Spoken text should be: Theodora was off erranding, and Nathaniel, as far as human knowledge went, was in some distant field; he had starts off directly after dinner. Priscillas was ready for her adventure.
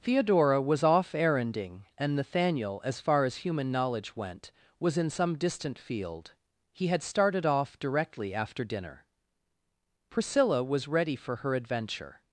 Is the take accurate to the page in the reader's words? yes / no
no